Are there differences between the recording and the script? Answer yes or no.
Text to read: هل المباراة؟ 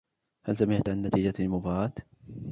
yes